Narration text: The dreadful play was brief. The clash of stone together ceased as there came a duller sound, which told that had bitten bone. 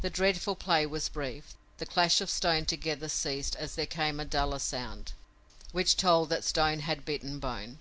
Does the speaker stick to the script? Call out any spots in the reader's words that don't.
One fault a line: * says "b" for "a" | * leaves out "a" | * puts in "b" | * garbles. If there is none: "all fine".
* puts in "stone"